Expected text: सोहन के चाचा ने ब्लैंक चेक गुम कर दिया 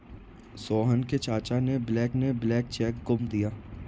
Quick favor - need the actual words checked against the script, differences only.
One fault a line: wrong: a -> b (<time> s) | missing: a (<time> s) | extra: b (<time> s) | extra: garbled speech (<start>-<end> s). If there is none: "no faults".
extra: ने ब्लैंक (2.1 s)
missing: कर (3.3 s)